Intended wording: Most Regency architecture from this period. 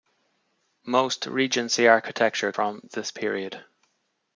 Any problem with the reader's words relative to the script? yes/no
no